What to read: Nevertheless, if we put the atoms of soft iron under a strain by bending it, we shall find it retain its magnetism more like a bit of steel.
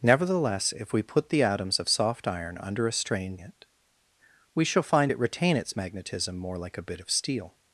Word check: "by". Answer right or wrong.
wrong